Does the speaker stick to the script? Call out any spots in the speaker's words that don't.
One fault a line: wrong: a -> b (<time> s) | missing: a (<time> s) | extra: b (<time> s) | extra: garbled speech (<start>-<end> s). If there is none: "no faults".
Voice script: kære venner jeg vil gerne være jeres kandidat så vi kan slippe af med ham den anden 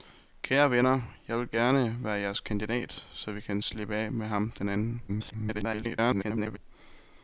extra: garbled speech (5.1-6.6 s)